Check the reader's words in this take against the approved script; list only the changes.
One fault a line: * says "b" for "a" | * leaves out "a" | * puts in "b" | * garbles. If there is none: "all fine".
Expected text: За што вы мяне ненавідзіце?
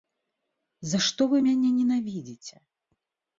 all fine